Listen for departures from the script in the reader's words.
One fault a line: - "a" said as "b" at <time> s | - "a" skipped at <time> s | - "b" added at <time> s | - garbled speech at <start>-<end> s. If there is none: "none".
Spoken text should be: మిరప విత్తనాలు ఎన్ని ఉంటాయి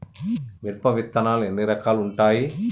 - "రకాలు" added at 1.6 s